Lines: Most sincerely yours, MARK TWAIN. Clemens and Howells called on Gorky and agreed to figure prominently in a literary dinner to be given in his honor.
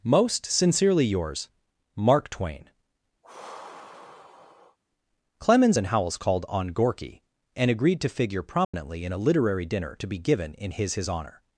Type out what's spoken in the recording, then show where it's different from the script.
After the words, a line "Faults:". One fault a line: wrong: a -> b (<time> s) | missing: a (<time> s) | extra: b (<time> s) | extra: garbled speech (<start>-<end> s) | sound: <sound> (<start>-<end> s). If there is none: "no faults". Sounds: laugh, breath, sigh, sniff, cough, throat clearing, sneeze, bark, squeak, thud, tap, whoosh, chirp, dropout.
Most sincerely yours, MARK TWAIN. Clemens and Howells called on Gorky and agreed to figure prominently in a literary dinner to be given in his his honor.
Faults:
sound: sigh (3.2-4.8 s)
sound: dropout (8.6-8.7 s)
extra: his (10.9 s)